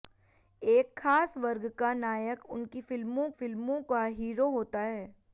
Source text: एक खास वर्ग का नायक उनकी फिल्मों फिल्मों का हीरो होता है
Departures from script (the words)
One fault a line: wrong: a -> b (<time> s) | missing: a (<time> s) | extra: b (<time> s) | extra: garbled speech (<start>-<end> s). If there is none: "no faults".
no faults